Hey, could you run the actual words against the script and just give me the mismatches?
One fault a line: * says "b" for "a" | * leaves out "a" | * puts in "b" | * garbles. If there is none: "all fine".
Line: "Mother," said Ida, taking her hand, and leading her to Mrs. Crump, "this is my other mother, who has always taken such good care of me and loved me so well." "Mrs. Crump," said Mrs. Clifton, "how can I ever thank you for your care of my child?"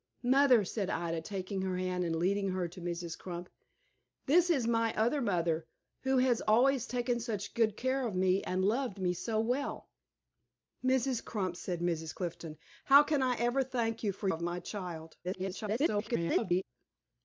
* leaves out "your care"
* garbles